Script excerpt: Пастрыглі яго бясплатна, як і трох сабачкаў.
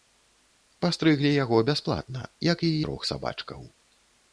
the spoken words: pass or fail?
pass